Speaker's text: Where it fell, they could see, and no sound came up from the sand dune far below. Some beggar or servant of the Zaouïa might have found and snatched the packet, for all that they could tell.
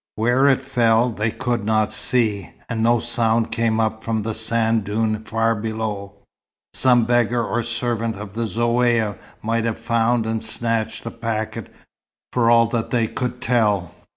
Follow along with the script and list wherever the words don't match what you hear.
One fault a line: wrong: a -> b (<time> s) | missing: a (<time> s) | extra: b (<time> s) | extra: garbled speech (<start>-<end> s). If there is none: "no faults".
extra: not (1.6 s)